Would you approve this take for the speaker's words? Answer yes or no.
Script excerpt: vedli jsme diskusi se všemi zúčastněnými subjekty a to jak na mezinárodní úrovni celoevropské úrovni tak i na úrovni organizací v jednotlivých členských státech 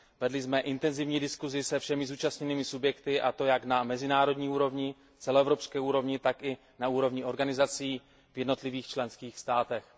no